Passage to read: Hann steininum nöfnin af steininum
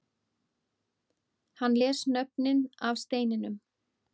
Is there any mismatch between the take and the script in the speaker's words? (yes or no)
yes